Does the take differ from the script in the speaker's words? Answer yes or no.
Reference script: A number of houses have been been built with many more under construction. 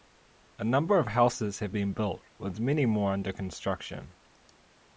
yes